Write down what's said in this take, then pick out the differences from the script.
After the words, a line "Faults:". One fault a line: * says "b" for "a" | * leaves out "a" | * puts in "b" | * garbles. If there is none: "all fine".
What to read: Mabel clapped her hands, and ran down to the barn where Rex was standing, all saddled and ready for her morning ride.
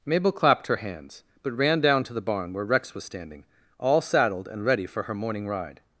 Mabel clapped her hands, but ran down to the barn where Rex was standing, all saddled and ready for her morning ride.
Faults:
* says "but" for "and"